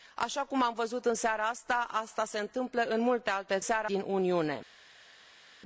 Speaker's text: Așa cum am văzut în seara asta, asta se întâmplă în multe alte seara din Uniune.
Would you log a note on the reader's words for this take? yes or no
no